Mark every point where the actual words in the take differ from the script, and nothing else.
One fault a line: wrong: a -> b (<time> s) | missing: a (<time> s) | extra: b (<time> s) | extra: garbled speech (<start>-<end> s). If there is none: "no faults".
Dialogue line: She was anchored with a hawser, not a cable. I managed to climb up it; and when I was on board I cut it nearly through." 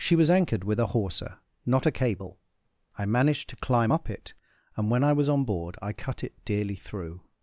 wrong: nearly -> dearly (6.4 s)